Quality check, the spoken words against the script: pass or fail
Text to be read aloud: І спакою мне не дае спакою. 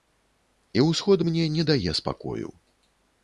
fail